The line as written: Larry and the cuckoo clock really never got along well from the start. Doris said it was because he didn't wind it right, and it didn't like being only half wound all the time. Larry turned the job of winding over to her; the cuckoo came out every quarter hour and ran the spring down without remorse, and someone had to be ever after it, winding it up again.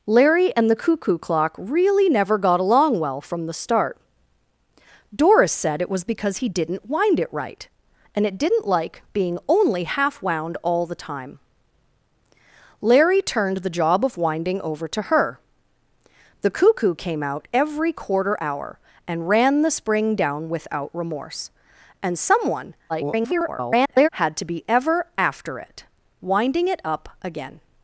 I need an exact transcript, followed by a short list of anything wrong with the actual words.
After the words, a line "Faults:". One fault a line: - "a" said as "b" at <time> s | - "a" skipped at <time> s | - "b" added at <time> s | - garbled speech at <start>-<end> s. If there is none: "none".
Larry and the cuckoo clock really never got along well from the start. Doris said it was because he didn't wind it right, and it didn't like being only half wound all the time. Larry turned the job of winding over to her; the cuckoo came out every quarter hour and ran the spring down without remorse, and someone [garbled] had to be ever after it, winding it up again.
Faults:
- garbled speech at 22.9-24.1 s